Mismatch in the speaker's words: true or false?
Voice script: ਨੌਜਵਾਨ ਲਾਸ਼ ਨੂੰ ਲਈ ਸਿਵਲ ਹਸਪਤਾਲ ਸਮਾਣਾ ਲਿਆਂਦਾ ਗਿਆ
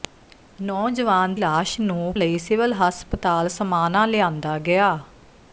false